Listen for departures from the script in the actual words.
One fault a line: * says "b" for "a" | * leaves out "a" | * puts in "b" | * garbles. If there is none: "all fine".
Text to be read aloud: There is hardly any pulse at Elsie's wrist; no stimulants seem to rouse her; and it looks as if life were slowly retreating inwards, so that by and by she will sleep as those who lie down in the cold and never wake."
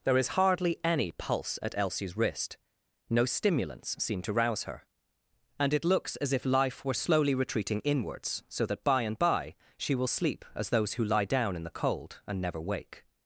all fine